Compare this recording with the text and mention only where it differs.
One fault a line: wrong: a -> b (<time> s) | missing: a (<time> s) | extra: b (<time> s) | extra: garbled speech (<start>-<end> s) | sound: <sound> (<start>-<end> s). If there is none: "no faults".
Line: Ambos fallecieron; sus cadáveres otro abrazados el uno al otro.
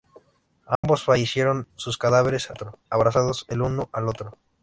sound: dropout (0.8-0.8 s)